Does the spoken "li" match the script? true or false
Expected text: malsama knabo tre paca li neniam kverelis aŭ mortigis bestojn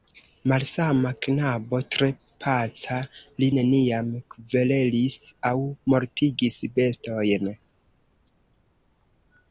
true